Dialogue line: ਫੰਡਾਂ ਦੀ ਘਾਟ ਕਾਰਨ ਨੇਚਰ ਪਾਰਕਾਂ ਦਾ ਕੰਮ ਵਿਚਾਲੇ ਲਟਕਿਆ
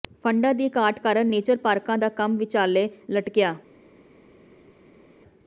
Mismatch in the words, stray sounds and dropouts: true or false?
false